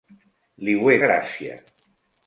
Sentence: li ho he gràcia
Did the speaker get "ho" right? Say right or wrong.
right